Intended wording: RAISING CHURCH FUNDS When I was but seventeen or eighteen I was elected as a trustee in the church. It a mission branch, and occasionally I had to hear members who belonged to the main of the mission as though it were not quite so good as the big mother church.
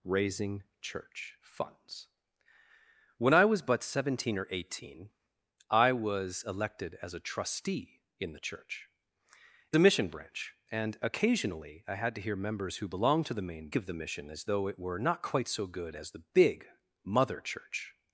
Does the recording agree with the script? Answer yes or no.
yes